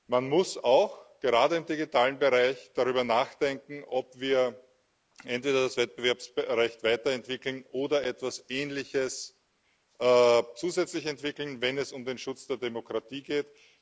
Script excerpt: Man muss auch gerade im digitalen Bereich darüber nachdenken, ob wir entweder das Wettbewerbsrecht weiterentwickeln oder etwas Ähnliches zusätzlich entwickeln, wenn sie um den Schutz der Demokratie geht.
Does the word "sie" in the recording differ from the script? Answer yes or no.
yes